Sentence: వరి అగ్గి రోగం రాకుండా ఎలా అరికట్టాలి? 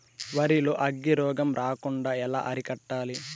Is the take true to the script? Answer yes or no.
no